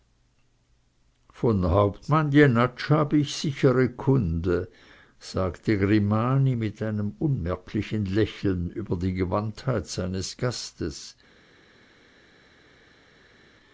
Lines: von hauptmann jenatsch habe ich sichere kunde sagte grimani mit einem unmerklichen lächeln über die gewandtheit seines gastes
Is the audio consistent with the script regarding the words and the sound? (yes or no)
yes